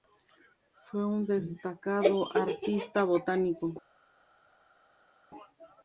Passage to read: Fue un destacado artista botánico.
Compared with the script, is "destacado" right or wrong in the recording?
right